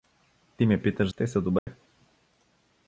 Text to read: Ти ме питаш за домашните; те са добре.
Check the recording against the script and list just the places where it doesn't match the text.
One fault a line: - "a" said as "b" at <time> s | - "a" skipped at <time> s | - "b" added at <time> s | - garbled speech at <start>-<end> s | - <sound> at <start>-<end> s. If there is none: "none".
- "за домашните" skipped at 1.1 s
- dropout at 1.6-1.7 s